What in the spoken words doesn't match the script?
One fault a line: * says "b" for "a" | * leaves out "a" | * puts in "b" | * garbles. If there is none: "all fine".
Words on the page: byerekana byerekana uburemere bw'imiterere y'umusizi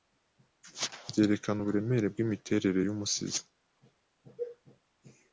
* leaves out "byerekana"